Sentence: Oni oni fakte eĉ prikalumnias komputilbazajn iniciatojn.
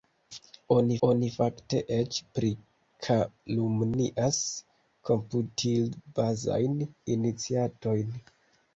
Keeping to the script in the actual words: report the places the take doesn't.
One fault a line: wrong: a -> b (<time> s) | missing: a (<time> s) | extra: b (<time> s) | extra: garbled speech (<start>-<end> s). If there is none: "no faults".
no faults